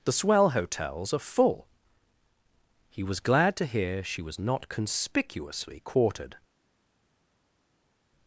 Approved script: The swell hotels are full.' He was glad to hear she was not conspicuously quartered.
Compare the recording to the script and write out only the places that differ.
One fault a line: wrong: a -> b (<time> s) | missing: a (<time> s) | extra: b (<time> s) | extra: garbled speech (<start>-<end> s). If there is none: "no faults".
no faults